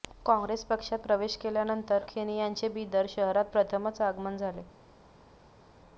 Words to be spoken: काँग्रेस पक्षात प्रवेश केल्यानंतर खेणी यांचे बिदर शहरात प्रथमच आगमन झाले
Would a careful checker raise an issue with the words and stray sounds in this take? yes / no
no